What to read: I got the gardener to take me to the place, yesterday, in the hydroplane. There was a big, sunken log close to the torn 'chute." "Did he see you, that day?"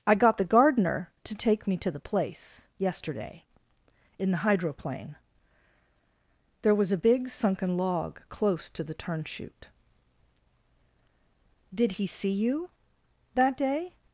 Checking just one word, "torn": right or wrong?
wrong